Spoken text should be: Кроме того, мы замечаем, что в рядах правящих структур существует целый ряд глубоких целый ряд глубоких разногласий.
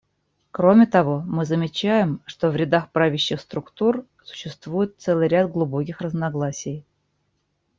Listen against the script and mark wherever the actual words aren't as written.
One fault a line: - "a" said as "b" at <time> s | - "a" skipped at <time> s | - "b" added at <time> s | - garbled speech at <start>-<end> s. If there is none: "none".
- "целый ряд глубоких" skipped at 6.0 s